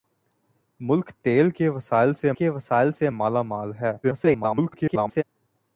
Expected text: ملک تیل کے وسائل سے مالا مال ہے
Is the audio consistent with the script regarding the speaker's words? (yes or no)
no